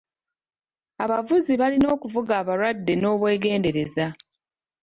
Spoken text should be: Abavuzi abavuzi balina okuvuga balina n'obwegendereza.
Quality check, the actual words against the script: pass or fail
fail